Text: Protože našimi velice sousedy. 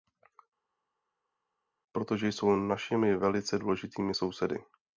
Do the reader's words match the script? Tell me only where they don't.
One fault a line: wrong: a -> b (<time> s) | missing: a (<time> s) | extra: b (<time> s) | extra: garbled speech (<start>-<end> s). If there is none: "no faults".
extra: jsou (2.3 s)
extra: důležitými (3.6 s)